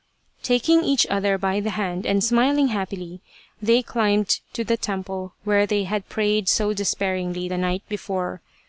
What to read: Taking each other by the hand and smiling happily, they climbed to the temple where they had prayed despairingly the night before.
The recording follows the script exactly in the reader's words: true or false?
false